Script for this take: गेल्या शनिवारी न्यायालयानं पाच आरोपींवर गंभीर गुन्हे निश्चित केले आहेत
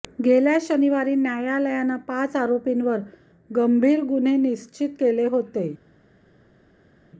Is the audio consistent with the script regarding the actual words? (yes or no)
no